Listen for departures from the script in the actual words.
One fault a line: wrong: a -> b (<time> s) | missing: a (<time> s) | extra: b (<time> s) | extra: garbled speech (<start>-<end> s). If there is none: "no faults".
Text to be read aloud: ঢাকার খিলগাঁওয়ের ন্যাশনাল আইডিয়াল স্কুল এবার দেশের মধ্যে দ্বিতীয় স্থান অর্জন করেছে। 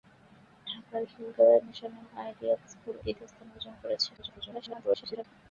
missing: এবার দেশের মধ্যে (3.0 s)
extra: garbled speech (4.2-5.2 s)